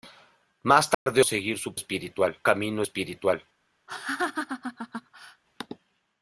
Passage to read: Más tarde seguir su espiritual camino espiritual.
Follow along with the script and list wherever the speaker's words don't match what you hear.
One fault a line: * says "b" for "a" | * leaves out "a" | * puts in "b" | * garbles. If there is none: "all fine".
all fine